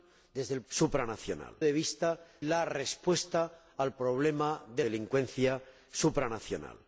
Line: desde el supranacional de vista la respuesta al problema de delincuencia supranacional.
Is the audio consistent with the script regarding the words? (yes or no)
yes